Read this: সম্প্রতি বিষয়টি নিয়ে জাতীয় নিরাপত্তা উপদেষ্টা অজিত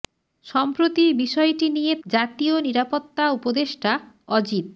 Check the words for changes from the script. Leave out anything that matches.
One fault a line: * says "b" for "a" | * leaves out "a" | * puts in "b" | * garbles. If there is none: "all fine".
all fine